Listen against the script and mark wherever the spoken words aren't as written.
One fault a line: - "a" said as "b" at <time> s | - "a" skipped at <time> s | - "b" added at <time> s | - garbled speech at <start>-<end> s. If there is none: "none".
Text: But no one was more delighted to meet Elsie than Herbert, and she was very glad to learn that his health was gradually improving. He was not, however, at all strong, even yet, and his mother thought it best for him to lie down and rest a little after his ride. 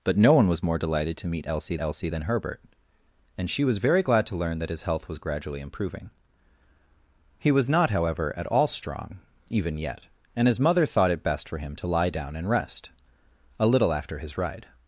- "Elsie" added at 1.8 s